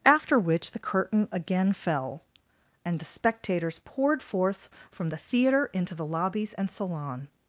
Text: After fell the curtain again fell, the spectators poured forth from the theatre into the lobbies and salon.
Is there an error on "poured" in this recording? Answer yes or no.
no